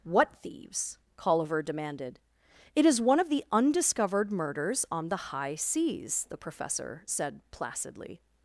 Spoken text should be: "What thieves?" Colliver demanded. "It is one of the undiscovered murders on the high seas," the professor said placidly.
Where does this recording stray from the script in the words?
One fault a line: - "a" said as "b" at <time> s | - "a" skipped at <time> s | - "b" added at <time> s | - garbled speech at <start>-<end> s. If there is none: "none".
none